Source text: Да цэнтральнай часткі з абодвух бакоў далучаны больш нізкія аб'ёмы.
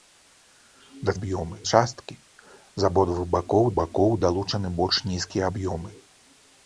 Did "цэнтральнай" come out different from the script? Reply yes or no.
yes